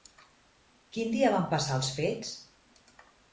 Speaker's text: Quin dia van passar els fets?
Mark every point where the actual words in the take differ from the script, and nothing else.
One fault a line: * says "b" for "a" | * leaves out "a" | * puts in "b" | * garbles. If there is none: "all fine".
all fine